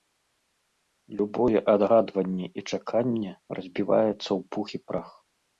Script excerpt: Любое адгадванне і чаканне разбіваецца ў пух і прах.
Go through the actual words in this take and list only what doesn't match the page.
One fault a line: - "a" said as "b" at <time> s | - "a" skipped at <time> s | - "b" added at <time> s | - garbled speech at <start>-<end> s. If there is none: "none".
none